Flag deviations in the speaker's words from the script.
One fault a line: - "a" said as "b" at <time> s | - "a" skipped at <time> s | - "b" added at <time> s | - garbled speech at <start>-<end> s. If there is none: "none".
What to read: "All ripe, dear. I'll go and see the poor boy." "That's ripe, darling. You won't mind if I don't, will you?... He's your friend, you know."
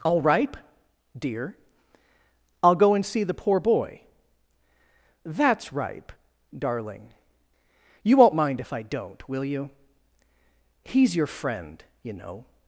none